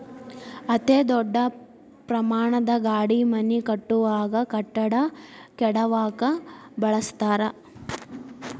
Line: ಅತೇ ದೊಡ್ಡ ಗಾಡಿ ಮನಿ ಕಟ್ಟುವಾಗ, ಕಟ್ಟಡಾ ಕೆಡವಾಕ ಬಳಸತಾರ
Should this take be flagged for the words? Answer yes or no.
yes